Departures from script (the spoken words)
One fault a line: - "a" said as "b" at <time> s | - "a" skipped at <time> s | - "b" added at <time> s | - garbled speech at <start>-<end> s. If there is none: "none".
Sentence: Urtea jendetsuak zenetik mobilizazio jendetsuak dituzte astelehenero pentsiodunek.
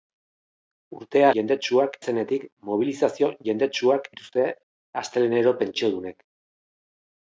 none